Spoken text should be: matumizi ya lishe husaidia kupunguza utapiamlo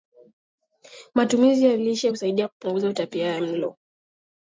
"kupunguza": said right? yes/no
yes